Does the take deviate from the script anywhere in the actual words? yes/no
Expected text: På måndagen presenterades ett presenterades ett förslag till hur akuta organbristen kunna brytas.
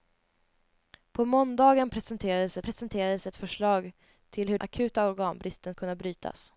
no